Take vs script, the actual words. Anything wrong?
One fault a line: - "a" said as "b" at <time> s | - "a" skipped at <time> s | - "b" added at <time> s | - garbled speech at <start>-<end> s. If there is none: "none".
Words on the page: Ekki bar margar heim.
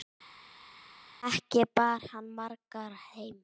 - "hann" added at 2.1 s